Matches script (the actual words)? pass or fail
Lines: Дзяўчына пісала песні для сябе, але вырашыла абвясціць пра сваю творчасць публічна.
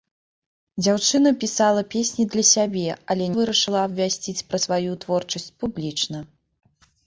pass